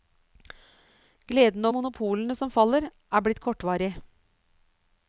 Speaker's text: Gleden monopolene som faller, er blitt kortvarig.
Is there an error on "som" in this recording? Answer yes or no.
no